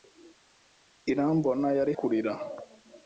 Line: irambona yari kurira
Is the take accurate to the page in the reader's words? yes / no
yes